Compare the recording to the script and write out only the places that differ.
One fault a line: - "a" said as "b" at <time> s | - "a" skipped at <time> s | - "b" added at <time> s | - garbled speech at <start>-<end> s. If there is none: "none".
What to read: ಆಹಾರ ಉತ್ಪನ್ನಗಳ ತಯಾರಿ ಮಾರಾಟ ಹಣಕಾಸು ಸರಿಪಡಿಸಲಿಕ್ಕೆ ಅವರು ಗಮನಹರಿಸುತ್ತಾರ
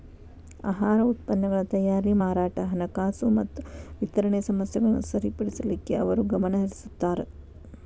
- "ಮತ್ತ ವಿತರಣೆ ಸಮಸ್ಯೆಗಳನ್ನ" added at 3.4 s